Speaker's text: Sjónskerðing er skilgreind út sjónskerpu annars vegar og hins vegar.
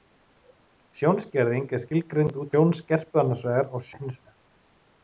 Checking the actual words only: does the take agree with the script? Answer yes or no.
yes